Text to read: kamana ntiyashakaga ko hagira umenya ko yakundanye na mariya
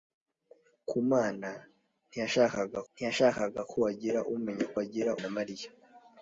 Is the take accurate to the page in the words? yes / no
no